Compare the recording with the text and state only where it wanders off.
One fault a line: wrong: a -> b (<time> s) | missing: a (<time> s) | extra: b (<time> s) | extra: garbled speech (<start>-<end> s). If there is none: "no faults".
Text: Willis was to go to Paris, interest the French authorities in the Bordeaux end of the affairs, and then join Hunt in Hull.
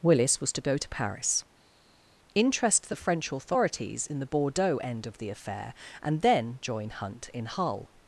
wrong: affairs -> affair (5.3 s)